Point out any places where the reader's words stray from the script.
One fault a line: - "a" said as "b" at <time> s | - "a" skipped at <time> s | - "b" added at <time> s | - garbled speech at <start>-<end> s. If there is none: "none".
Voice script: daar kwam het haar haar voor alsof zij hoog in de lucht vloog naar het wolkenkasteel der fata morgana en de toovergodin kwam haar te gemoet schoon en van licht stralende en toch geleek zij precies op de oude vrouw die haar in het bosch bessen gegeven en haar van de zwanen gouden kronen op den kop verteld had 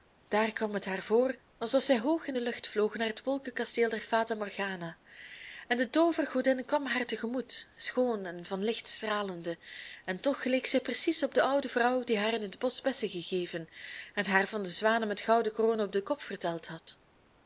- "haar" skipped at 1.0 s
- "met" added at 15.1 s